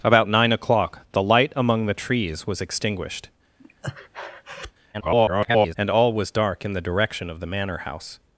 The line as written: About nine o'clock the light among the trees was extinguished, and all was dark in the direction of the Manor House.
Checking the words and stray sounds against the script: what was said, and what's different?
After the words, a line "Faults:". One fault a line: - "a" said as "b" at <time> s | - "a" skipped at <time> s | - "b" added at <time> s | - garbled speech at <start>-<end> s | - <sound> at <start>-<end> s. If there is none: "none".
About nine o'clock the light among the trees was extinguished, [garbled] and all was dark in the direction of the Manor House.
Faults:
- breath at 3.6-4.7 s
- garbled speech at 4.9-5.8 s